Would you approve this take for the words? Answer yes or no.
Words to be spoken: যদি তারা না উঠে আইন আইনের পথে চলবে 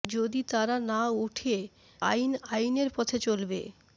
yes